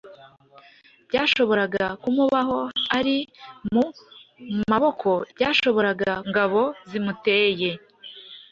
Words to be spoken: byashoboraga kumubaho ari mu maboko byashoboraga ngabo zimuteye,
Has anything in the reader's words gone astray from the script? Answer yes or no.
no